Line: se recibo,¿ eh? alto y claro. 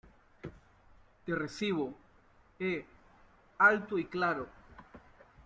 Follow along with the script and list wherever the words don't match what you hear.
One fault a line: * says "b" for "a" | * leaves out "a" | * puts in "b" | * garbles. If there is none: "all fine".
* says "te" for "se"